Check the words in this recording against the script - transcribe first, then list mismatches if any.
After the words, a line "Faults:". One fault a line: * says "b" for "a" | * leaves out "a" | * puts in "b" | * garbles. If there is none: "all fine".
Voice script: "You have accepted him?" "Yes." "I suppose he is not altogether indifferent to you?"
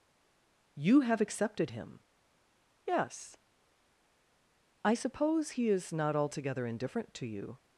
"You have accepted him?" "Yes." "I suppose he is not altogether indifferent to you?"
Faults:
all fine